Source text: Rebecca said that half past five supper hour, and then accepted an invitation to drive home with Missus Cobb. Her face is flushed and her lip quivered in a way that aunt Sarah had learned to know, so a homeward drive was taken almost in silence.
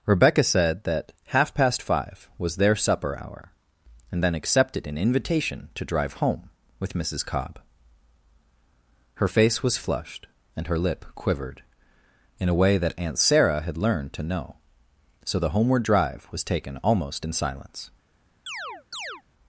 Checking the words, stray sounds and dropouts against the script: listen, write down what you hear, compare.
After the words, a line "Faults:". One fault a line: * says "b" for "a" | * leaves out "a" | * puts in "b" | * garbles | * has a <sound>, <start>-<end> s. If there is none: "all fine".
Rebecca said that half past five was their supper hour, and then accepted an invitation to drive home with Missus Cobb. Her face was flushed and her lip quivered in a way that aunt Sarah had learned to know, so the homeward drive was taken almost in silence.
Faults:
* puts in "was their"
* says "was" for "is"
* says "the" for "a"
* has a chirp, 18.5-19.2 s